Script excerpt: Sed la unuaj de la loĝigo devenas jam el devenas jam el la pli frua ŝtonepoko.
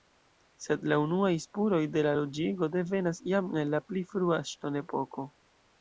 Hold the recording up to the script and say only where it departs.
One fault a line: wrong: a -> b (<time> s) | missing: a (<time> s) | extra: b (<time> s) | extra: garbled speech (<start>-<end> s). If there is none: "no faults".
extra: spuroj (1.4 s)
missing: devenas jam el (3.8 s)